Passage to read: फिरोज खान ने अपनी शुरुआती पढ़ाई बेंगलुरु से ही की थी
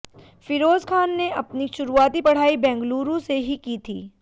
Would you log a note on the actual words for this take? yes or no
no